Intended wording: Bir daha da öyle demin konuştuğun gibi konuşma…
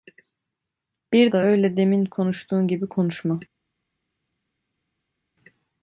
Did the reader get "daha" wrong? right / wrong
wrong